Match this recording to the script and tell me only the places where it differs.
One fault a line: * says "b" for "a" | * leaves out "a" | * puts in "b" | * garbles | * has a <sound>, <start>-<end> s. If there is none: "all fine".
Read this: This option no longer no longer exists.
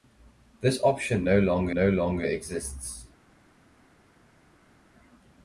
all fine